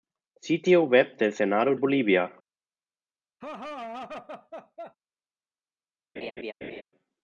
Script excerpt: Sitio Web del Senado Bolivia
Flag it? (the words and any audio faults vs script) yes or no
yes